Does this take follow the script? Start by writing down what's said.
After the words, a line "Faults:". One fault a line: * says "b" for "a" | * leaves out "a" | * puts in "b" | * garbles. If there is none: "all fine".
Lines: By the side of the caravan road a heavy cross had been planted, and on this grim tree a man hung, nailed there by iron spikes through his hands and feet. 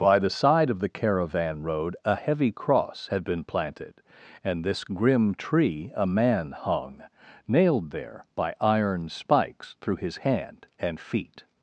By the side of the caravan road a heavy cross had been planted, and this grim tree a man hung, nailed there by iron spikes through his hand and feet.
Faults:
* leaves out "on"
* says "hand" for "hands"